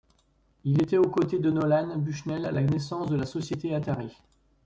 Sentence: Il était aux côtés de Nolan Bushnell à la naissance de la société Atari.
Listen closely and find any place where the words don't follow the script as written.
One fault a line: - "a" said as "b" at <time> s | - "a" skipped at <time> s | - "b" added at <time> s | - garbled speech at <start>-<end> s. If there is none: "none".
none